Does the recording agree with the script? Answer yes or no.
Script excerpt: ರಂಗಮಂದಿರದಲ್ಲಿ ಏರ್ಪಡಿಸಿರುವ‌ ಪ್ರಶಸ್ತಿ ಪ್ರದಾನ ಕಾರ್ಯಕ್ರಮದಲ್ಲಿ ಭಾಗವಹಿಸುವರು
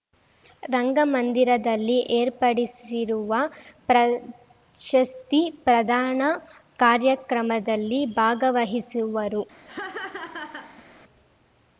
yes